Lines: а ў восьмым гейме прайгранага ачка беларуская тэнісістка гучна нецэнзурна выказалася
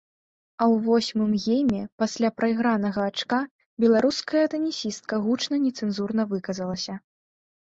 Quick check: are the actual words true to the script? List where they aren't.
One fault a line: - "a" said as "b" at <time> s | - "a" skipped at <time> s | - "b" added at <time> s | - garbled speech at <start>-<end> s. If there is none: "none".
- "пасля" added at 2.0 s